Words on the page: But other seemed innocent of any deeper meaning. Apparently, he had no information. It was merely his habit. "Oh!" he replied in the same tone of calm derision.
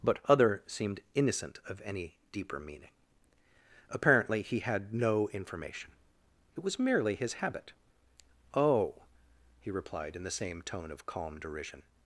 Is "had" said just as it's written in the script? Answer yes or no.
yes